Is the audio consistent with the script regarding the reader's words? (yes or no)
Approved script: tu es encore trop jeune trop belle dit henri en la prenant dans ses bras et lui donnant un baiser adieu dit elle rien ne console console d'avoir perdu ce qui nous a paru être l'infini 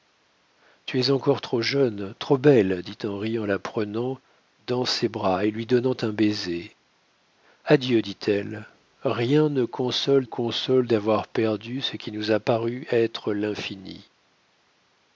yes